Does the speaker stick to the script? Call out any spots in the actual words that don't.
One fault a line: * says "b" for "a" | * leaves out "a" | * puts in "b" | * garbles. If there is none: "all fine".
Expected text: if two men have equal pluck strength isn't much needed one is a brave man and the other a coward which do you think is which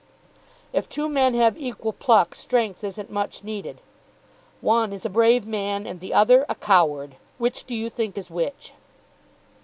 all fine